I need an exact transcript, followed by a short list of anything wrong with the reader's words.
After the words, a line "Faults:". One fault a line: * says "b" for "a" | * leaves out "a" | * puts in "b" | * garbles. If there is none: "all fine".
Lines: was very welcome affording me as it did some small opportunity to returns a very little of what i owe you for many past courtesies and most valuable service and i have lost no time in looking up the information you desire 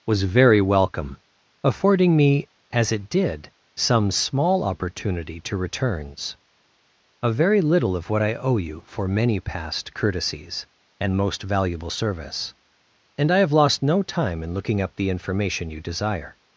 was very welcome affording me as it did some small opportunity to returns a very little of what i owe you for many past courtesies and most valuable service and i have lost no time in looking up the information you desire
Faults:
all fine